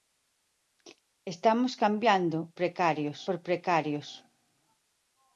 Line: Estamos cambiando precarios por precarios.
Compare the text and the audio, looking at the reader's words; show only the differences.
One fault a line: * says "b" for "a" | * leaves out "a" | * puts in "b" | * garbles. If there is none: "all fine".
all fine